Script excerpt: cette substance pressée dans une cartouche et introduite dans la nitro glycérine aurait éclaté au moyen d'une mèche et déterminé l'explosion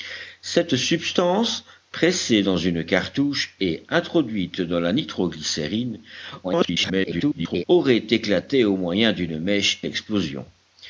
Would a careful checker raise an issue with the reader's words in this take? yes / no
yes